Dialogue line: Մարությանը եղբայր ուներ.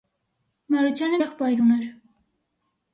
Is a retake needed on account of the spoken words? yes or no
no